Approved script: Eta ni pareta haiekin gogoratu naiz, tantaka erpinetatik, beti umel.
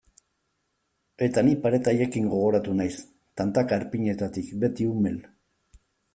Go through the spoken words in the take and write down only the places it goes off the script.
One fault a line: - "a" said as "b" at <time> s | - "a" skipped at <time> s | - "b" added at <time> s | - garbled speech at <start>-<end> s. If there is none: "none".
none